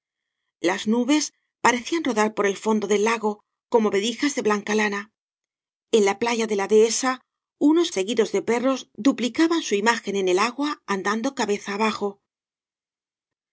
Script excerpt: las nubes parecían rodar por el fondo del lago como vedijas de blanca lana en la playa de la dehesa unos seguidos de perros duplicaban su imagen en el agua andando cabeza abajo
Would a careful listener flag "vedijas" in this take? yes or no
no